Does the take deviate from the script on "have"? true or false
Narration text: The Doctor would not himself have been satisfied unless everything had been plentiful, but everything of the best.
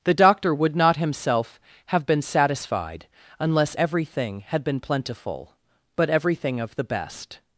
false